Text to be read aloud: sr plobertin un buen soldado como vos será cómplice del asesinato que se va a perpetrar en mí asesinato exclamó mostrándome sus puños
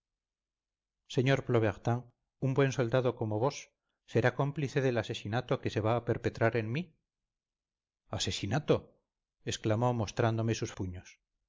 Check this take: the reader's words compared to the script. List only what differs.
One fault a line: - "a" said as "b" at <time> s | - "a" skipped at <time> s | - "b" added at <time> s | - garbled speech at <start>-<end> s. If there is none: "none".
none